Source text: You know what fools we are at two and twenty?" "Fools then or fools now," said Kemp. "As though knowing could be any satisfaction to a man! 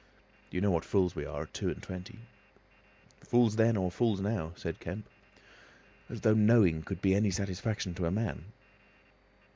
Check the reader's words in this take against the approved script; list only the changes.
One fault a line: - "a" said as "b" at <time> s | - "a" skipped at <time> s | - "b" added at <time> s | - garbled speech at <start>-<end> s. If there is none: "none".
none